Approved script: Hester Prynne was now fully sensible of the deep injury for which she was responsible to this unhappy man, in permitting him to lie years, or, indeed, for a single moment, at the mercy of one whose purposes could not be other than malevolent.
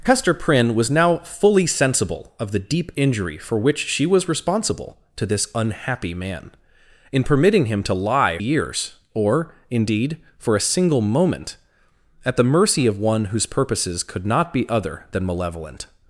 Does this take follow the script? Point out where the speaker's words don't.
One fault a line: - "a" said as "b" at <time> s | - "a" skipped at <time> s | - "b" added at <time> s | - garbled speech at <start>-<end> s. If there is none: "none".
none